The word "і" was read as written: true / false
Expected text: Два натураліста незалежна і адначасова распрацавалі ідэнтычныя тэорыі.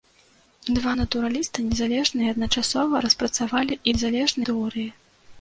true